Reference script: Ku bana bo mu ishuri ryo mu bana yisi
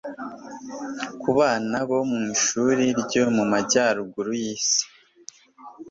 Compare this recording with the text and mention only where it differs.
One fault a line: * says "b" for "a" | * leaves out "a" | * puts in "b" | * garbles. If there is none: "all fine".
* says "majyaruguru" for "bana"